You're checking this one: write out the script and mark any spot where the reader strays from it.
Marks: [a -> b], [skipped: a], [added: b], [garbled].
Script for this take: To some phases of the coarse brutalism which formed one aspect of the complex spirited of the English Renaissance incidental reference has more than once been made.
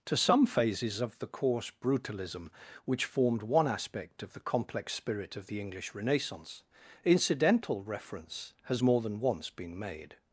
To some phases of the coarse brutalism which formed one aspect of the complex [spirited -> spirit] of the English Renaissance incidental reference has more than once been made.